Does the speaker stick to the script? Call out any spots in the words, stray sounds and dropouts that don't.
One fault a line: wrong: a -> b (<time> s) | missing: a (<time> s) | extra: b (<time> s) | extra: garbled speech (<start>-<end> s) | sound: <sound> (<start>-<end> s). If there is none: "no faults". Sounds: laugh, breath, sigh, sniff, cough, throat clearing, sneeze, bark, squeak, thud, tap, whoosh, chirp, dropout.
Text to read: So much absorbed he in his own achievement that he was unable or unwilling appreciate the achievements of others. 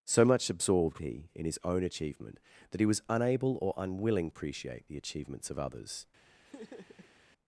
sound: laugh (6.5-7.2 s)